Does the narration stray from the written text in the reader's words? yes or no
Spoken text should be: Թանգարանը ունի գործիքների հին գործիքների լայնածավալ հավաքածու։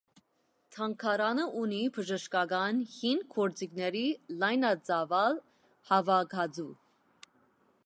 yes